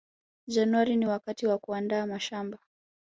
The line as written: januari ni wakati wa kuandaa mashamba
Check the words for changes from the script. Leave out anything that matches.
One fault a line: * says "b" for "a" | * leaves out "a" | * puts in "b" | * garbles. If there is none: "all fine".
all fine